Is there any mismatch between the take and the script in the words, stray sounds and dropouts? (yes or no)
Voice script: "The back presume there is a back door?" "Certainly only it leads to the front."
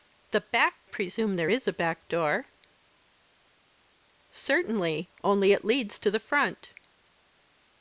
no